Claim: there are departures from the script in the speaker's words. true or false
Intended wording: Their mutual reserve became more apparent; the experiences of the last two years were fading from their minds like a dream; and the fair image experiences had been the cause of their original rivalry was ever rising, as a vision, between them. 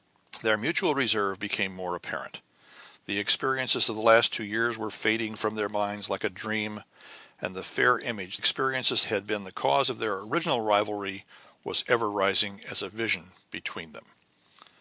false